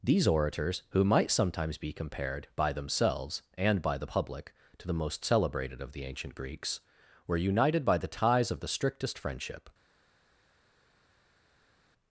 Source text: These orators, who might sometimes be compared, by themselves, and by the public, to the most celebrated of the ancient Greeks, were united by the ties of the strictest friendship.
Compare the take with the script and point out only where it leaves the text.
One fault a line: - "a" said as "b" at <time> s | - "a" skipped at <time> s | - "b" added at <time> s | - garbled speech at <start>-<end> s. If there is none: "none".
none